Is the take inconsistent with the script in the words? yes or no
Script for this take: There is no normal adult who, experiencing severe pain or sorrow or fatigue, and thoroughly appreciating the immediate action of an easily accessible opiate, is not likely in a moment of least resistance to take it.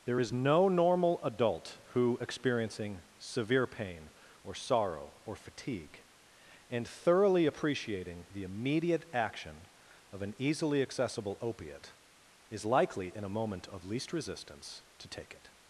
yes